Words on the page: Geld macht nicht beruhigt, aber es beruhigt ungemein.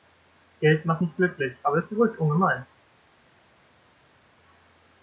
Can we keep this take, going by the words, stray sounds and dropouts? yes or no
no